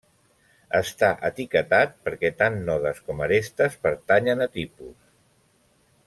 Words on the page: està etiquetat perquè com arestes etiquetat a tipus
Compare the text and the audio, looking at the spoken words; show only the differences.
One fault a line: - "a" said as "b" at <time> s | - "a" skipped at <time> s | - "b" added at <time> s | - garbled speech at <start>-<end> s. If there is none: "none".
- "tant nodes" added at 2.4 s
- "etiquetat" said as "pertanyen" at 3.9 s